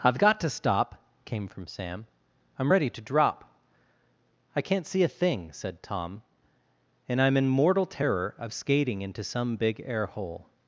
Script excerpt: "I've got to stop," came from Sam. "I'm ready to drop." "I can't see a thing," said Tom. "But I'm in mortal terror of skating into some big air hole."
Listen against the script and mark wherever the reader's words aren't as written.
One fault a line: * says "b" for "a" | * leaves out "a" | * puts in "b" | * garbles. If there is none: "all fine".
* says "And" for "But"